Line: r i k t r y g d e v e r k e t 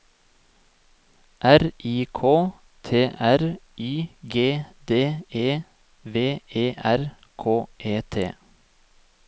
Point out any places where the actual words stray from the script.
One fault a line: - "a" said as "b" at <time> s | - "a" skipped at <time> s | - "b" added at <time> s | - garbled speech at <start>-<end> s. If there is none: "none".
none